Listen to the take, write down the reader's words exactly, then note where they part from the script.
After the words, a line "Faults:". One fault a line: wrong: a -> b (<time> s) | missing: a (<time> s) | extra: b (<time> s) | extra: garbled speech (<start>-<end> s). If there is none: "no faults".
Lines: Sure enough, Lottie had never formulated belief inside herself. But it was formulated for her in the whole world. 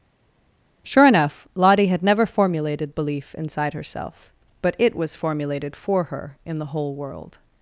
Sure enough, Lottie had never formulated belief inside herself. But it was formulated for her in the whole world.
Faults:
no faults